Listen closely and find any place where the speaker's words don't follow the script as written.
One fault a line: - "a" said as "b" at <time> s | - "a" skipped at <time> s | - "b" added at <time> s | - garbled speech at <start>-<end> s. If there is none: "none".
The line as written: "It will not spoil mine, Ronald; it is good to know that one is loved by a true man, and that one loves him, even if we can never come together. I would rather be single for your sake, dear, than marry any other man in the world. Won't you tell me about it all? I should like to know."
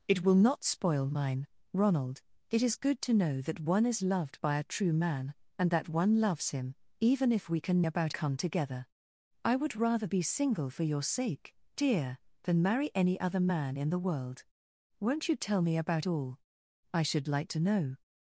- "never" said as "about" at 7.8 s
- "it" skipped at 16.1 s